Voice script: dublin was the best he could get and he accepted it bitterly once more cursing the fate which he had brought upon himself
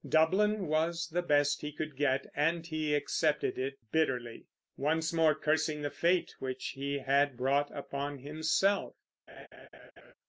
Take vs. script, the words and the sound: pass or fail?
fail